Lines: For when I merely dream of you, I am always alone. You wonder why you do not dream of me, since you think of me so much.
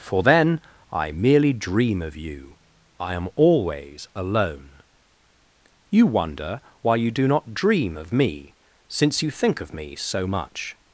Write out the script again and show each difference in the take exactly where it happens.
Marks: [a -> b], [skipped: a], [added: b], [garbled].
For [when -> then] I merely dream of you, I am always alone. You wonder why you do not dream of me, since you think of me so much.